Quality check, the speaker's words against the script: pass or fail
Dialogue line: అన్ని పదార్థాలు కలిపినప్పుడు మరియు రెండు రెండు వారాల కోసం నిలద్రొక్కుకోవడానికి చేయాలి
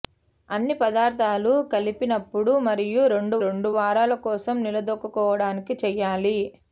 pass